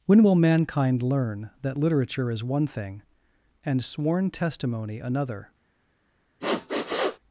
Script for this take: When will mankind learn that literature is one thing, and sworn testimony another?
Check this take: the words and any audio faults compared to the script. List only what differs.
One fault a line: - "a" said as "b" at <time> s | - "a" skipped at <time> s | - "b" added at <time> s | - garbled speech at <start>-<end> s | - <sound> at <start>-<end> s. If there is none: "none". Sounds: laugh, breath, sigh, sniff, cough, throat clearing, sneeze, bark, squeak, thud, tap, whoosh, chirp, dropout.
- sniff at 6.4-7.2 s